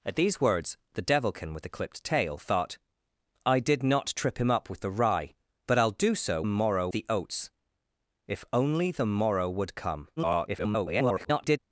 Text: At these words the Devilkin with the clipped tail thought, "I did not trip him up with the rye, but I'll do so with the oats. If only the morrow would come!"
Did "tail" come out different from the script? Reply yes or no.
no